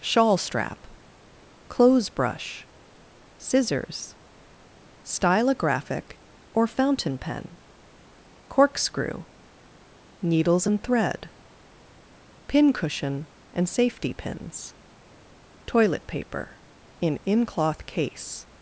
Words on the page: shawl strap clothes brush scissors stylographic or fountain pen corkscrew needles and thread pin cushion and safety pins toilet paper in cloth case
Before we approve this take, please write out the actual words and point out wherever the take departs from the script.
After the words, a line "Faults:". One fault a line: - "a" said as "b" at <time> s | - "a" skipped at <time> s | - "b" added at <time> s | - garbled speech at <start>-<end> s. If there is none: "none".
shawl strap clothes brush scissors stylographic or fountain pen corkscrew needles and thread pin cushion and safety pins toilet paper in in cloth case
Faults:
- "in" added at 17.3 s